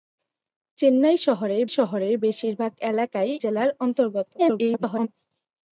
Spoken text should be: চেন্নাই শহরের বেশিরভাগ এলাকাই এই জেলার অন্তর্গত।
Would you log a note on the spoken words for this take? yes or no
yes